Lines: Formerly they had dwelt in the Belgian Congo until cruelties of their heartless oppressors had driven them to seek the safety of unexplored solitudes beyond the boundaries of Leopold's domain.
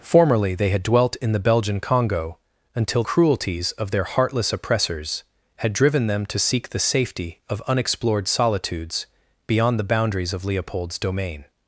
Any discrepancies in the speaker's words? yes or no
no